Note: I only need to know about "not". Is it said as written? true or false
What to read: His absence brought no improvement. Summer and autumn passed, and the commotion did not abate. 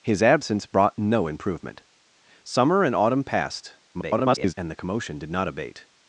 true